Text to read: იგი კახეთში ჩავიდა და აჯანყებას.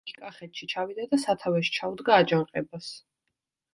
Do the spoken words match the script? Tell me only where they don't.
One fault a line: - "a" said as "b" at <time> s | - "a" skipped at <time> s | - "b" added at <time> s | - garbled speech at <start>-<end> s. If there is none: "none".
- "სათავეში ჩაუდგა" added at 1.2 s